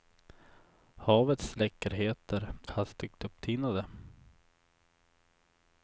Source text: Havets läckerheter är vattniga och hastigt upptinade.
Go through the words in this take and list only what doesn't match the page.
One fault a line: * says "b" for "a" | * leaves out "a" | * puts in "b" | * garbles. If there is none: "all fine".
* leaves out "är vattniga och"